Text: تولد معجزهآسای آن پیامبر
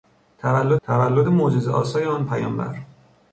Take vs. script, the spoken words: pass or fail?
fail